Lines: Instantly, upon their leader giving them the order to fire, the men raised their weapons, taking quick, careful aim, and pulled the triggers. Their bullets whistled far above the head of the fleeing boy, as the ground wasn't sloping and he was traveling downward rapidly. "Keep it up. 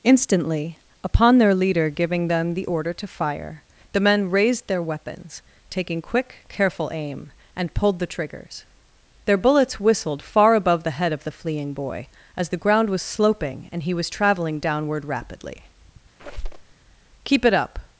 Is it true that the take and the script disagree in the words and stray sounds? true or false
true